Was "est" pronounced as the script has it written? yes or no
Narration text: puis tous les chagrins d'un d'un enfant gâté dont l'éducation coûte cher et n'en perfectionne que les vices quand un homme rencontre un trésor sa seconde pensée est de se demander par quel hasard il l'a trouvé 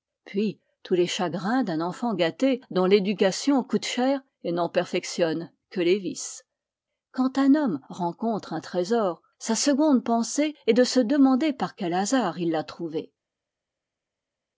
yes